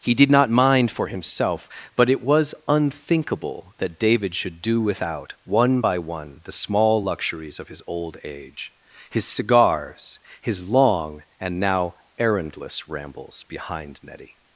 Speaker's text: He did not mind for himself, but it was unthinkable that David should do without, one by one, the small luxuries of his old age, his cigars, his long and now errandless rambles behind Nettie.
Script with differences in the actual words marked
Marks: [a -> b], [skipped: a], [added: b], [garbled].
He did not mind for himself, but it was unthinkable that David should do without, one by one, the small luxuries of his old age, his cigars, his long and now errandless rambles behind Nettie.